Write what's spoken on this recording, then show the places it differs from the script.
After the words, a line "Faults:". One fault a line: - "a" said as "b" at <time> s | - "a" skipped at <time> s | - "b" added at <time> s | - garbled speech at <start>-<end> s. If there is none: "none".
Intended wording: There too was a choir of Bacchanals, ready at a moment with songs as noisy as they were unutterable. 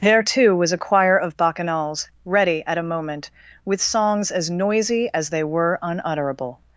There too was a choir of Bacchanals, ready at a moment with songs as noisy as they were unutterable.
Faults:
none